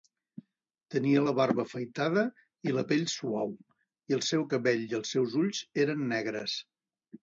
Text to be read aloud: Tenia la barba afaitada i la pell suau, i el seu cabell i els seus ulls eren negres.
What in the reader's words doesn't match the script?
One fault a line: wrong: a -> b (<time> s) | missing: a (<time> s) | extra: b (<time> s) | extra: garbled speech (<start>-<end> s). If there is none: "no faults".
no faults